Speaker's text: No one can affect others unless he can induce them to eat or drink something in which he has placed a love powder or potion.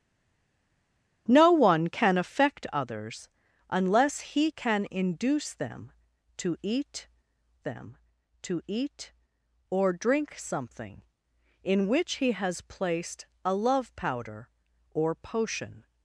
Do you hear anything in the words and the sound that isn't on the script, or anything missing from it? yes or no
yes